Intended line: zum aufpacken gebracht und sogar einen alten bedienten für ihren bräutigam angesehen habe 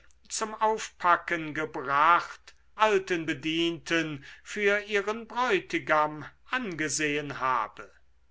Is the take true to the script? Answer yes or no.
no